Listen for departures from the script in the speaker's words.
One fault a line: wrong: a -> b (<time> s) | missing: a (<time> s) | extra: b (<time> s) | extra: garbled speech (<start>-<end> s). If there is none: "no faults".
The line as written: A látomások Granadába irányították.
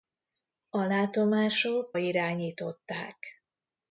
missing: Granadába (2.0 s)